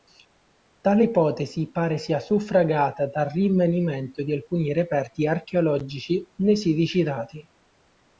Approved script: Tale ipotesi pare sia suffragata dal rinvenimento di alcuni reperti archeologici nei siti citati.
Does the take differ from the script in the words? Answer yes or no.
no